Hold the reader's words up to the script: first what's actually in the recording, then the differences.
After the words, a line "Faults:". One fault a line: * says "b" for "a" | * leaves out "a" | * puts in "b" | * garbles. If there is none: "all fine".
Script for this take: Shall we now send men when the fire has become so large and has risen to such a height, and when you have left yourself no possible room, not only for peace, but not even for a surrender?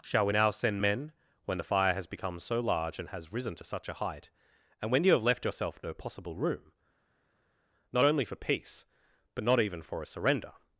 Shall we now send men when the fire has become so large and has risen to such a height, and when you have left yourself no possible room, not only for peace, but not even for a surrender?
Faults:
all fine